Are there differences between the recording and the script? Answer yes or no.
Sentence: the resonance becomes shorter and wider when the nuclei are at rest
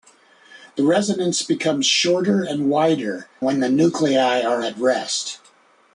no